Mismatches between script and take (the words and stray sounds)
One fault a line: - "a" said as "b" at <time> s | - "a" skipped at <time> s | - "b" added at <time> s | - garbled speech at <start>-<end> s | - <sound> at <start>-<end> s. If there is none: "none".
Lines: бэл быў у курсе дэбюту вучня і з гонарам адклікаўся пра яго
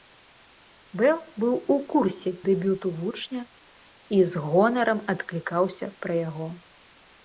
none